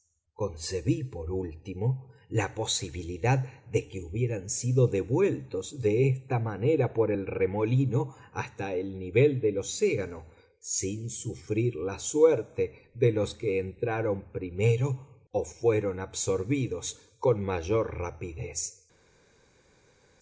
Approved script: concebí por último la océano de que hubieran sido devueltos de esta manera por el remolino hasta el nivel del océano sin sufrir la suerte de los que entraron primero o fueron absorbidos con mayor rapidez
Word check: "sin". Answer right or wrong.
right